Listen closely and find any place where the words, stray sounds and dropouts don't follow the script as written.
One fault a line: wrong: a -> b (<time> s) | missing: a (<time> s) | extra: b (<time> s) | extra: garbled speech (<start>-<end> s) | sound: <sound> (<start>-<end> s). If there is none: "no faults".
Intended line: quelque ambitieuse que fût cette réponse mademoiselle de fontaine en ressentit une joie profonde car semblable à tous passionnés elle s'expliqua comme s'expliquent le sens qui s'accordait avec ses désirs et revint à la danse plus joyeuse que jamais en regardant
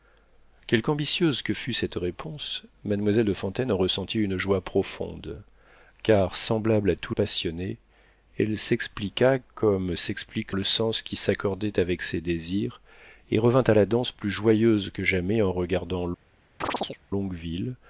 sound: chirp (16.6-17.0 s)